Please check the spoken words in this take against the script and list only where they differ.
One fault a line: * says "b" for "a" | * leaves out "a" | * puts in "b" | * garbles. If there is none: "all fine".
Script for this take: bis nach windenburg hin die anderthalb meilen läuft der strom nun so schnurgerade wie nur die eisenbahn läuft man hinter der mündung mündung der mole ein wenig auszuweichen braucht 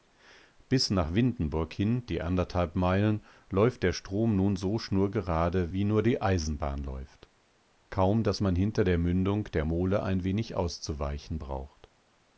* puts in "kaum daß"
* leaves out "mündung"